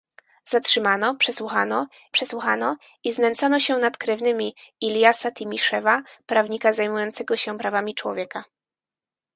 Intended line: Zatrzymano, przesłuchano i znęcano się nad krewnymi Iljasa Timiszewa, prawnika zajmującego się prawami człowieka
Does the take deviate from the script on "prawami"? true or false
false